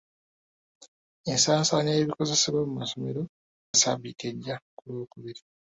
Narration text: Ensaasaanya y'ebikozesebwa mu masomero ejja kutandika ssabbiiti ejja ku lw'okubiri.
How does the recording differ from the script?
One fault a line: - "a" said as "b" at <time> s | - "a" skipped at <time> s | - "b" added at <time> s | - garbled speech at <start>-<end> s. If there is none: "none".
- "ejja kutandika" skipped at 3.2 s